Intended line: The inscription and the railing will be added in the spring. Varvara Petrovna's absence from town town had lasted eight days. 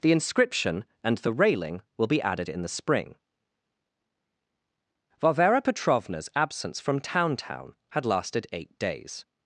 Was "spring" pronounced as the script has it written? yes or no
yes